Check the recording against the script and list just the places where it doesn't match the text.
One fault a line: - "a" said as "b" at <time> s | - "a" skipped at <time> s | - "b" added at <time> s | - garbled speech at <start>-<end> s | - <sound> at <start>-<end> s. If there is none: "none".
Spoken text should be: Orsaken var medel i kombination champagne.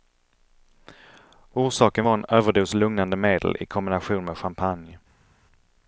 - "en överdos lugnande" added at 2.1 s
- "med" added at 4.2 s